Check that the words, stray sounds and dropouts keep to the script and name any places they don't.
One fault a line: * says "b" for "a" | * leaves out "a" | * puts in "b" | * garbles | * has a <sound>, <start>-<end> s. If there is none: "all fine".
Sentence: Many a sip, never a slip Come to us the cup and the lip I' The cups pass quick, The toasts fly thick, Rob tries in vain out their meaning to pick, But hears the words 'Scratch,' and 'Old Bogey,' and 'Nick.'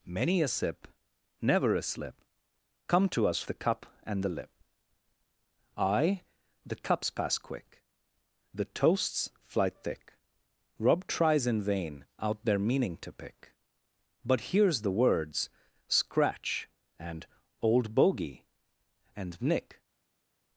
all fine